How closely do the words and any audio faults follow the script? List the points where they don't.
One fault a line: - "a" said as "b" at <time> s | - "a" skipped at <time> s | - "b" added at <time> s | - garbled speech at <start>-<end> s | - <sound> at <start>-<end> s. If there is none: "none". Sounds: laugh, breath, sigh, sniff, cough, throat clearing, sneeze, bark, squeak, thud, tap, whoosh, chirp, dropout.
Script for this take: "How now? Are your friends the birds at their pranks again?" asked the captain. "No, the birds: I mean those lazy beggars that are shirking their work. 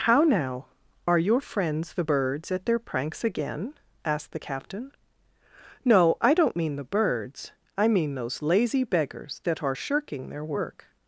- "I don't mean" added at 6.2 s